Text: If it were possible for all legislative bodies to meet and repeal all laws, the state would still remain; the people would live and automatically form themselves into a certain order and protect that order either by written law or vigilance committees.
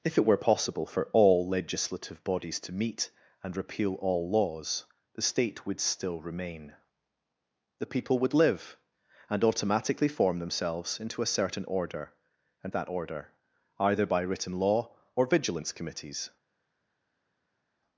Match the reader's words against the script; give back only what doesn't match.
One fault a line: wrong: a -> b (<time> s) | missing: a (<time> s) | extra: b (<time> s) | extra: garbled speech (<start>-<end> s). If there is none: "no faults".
missing: protect (12.7 s)